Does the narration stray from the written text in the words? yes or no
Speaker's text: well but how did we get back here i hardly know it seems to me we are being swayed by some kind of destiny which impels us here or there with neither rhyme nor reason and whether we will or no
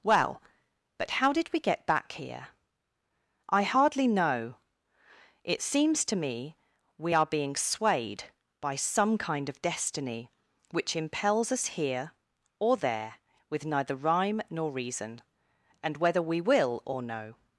no